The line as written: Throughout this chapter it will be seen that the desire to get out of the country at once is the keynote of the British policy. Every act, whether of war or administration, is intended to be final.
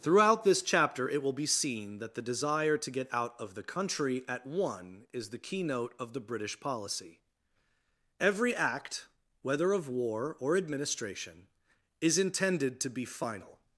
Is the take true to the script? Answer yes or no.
no